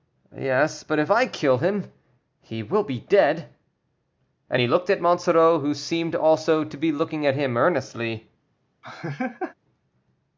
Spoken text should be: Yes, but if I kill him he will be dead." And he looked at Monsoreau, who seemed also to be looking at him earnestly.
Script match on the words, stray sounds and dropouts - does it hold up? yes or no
no